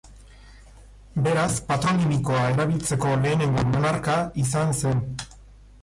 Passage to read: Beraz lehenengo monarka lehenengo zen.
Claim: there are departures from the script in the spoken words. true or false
true